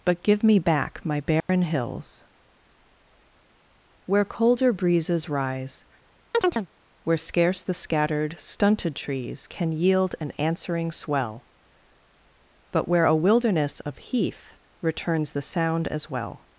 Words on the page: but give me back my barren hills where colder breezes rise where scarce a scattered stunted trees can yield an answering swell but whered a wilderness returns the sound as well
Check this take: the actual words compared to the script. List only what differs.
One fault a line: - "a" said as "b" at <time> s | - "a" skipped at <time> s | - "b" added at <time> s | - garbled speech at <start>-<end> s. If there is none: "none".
- "a" said as "the" at 7.6 s
- "whered" said as "where" at 12.9 s
- "of heath" added at 13.8 s